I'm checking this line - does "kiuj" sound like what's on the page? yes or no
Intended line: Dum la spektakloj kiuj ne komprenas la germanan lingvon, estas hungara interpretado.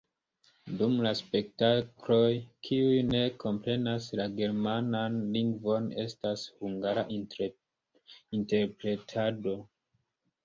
yes